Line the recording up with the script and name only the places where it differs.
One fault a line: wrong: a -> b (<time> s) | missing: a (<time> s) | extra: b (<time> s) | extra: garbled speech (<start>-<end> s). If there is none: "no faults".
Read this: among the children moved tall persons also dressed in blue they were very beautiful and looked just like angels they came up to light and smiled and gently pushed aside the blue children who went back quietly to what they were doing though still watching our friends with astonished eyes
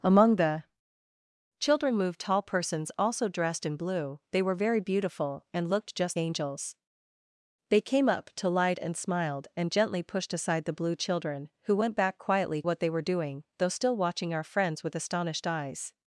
missing: like (6.2 s)
missing: to (12.6 s)